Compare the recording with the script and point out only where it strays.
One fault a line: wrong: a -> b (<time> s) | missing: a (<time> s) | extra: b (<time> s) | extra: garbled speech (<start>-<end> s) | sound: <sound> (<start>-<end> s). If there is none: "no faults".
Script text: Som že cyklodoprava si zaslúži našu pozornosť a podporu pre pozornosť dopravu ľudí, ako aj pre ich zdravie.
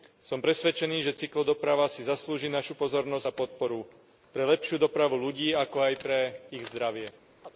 extra: presvedčený (0.4 s)
wrong: pozornosť -> lepšiu (4.5 s)
sound: chirp (7.4-7.5 s)